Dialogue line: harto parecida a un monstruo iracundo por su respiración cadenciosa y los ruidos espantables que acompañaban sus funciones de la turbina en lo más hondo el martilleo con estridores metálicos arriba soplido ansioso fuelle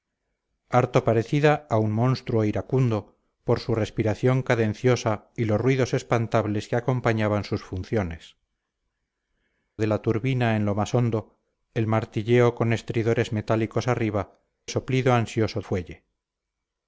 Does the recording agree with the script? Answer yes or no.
yes